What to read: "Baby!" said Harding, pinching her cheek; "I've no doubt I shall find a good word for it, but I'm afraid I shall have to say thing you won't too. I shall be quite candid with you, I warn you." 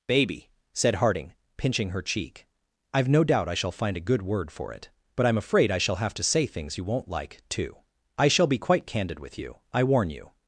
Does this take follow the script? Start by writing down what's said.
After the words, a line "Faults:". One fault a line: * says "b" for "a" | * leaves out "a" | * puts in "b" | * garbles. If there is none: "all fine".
"Baby!" said Harding, pinching her cheek; "I've no doubt I shall find a good word for it, but I'm afraid I shall have to say things you won't like, too. I shall be quite candid with you, I warn you."
Faults:
* says "things" for "thing"
* puts in "like"